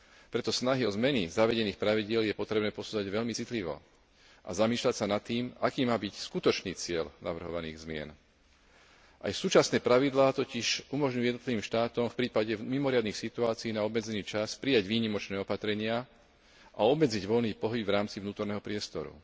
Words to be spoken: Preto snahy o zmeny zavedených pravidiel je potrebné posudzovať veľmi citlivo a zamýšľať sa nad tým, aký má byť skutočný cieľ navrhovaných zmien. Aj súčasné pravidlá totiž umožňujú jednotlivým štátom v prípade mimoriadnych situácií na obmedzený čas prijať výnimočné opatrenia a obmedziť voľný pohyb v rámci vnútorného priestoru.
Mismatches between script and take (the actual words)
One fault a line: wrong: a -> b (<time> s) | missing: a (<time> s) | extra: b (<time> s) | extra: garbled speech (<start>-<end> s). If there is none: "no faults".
no faults